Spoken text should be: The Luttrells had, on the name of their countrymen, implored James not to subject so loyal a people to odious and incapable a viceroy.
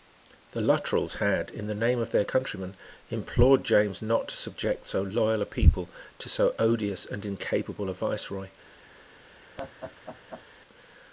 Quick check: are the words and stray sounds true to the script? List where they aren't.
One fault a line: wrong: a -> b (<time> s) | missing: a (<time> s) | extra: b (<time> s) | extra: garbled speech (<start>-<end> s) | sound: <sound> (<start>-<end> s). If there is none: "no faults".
wrong: on -> in (1.5 s)
extra: so (6.3 s)
sound: laugh (9.6-10.4 s)